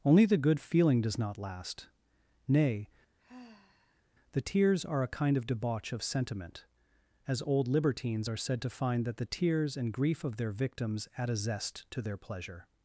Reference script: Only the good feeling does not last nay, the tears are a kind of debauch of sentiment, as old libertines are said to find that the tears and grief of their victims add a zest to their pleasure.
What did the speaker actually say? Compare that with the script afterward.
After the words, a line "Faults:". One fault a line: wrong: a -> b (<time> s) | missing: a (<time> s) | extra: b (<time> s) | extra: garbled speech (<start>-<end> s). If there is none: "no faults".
Only the good feeling does not last nay, the tears are a kind of debauch of sentiment, as old libertines are said to find that the tears and grief of their victims add a zest to their pleasure.
Faults:
no faults